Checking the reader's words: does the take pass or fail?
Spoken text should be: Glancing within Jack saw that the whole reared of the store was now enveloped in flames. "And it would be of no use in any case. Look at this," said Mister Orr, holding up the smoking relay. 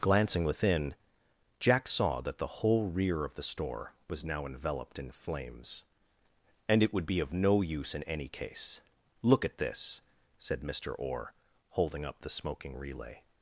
fail